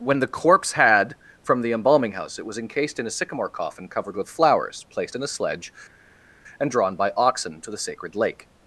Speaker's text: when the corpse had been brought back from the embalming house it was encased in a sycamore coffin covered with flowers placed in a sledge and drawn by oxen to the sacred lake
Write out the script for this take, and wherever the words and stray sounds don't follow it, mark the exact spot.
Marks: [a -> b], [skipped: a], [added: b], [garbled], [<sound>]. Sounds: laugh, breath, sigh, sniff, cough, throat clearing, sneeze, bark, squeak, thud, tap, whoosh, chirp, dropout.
when the corpse had [skipped: been brought back] from the embalming house it was encased in a sycamore coffin covered with flowers placed in a sledge and drawn by oxen to the sacred lake